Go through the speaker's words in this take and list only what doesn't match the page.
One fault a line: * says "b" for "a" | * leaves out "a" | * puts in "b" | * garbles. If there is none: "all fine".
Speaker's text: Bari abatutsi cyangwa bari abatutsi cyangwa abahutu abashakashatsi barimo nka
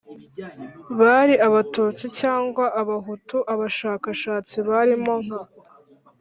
* leaves out "bari abatutsi cyangwa"